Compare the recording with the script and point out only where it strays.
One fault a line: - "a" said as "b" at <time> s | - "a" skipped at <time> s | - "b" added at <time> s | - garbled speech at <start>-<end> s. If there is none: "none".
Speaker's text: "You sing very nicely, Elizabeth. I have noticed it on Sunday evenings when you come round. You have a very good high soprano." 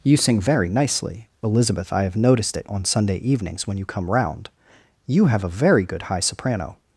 none